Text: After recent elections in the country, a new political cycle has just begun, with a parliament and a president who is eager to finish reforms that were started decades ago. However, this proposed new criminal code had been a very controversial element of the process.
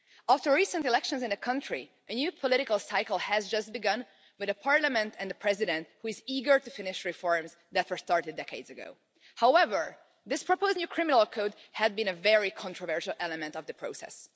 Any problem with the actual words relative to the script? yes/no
no